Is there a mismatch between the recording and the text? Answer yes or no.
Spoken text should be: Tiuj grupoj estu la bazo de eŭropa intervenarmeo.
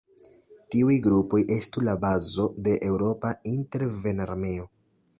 no